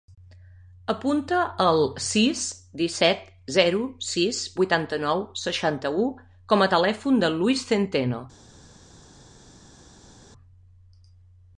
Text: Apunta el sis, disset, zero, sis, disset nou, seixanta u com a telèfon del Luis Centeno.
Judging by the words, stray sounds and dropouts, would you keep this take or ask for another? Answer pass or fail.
fail